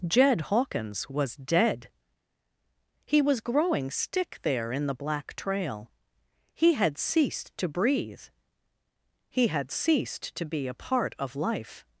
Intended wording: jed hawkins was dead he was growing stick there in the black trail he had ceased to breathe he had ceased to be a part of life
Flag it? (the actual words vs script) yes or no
no